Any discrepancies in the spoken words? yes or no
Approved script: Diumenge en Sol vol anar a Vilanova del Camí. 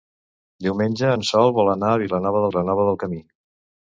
yes